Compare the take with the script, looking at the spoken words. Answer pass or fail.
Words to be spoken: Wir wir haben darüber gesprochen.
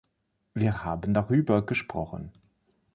fail